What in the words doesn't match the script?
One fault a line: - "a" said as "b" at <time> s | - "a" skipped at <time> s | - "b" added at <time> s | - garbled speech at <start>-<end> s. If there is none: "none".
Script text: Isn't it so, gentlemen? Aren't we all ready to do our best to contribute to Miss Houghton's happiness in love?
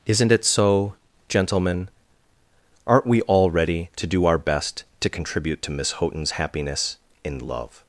none